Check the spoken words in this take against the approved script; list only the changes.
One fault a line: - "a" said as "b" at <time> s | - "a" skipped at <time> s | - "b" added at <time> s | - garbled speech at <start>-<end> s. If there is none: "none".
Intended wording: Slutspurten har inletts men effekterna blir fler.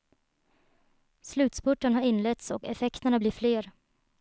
- "men" said as "och" at 2.5 s